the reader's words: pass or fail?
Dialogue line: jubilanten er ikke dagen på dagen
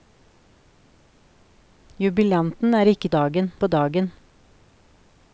pass